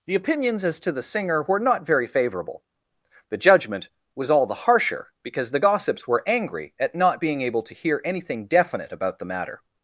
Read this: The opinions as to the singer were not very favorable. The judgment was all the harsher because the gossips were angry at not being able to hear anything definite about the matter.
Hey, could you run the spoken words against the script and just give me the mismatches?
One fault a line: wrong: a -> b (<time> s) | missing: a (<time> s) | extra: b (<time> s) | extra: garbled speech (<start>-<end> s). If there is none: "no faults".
no faults